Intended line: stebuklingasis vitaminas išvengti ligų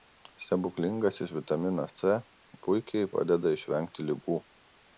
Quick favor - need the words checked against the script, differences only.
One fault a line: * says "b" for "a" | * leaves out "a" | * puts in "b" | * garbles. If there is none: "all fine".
* puts in "c puikiai padeda"